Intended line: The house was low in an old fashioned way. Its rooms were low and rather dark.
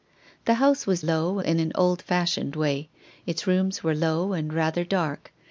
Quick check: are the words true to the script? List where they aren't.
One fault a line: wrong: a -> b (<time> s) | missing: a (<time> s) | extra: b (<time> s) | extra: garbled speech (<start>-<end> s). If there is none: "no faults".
no faults